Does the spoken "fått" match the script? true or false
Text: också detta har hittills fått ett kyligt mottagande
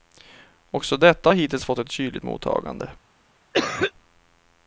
true